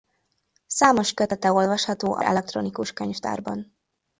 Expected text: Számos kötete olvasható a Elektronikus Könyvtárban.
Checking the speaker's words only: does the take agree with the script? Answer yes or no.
yes